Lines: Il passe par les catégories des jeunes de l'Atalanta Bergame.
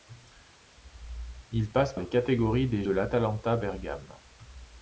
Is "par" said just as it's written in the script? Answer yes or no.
no